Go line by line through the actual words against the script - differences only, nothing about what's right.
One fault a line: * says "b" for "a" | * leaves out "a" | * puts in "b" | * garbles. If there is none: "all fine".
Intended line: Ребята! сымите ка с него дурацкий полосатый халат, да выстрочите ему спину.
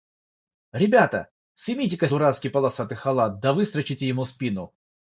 * leaves out "с него"